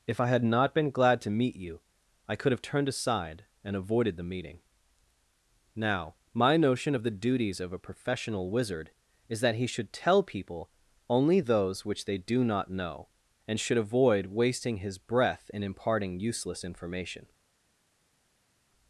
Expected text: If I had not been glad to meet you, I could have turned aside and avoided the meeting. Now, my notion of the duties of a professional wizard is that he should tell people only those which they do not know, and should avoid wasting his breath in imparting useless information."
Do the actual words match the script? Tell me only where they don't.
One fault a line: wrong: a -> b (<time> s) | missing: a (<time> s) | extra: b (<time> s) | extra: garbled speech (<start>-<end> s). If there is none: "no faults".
no faults